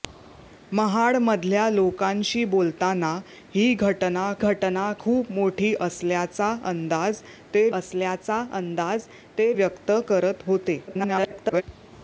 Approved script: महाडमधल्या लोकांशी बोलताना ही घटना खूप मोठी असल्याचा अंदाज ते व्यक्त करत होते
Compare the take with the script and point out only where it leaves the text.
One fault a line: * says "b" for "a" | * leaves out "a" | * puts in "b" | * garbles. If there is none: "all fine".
* puts in "घटना"
* puts in "असल्याचा अंदाज ते"
* garbles